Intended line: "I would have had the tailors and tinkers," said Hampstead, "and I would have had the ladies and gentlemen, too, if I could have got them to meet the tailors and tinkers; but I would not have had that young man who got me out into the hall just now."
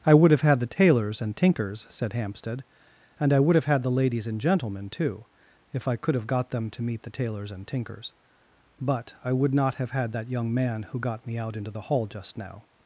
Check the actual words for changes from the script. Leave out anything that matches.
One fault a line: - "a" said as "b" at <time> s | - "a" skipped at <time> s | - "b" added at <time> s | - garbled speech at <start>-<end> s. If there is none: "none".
none